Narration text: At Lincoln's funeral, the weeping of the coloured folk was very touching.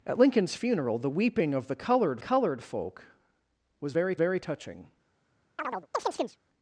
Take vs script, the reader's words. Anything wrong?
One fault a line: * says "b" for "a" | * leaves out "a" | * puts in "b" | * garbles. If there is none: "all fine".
* puts in "coloured"
* puts in "very"